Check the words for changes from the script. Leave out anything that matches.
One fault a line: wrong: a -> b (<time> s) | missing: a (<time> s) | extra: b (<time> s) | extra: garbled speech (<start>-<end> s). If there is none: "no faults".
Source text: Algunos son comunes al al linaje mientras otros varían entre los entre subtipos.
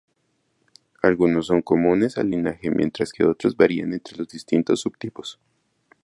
missing: al (2.3 s)
extra: que (3.1 s)
wrong: entre -> distintos (4.3 s)